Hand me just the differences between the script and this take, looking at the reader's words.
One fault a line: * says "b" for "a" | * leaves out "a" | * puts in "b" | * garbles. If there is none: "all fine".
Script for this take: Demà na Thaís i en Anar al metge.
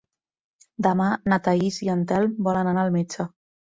* puts in "Telm volen"